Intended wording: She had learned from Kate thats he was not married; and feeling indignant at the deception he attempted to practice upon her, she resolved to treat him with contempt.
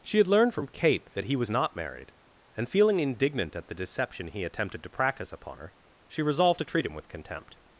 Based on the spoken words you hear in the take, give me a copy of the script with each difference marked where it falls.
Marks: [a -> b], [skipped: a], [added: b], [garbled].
She had learned from Kate [thats -> that] he was not married; and feeling indignant at the deception he attempted to practice upon her, she resolved to treat him with contempt.